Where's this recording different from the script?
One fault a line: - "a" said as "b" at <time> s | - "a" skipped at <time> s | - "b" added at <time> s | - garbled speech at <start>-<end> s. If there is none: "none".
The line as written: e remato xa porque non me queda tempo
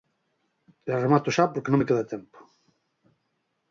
none